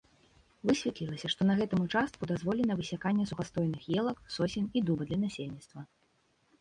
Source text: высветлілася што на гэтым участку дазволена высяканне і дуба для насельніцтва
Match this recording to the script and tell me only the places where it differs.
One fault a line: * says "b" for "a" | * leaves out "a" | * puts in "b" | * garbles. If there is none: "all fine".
* puts in "сухастойных елак сосен"